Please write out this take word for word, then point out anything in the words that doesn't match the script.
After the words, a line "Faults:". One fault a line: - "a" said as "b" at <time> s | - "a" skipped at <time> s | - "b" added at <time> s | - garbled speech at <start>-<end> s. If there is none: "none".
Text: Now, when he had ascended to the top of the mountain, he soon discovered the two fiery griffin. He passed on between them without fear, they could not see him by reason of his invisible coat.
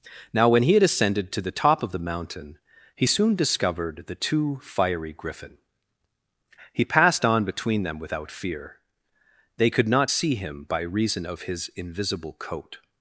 Now, when he had ascended to the top of the mountain, he soon discovered the two fiery griffin. He passed on between them without fear, they could not see him by reason of his invisible coat.
Faults:
none